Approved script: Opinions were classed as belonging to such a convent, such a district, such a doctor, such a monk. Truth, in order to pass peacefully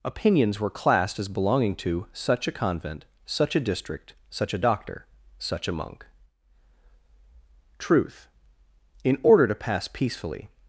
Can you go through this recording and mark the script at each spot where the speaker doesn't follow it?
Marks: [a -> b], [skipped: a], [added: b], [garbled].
Opinions were classed as belonging to such a convent, such a district, such a doctor, such a monk. Truth, in order to pass peacefully